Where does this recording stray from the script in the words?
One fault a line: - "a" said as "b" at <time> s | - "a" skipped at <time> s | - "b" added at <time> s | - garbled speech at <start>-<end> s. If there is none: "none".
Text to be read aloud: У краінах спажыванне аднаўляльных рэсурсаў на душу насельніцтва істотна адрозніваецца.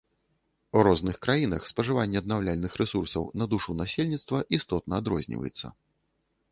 - "розных" added at 0.9 s